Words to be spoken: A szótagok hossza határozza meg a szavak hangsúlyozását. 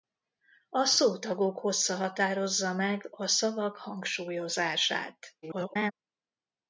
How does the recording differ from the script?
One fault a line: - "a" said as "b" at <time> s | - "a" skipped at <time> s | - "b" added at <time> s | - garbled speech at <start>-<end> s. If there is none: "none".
- garbled speech at 5.4-5.9 s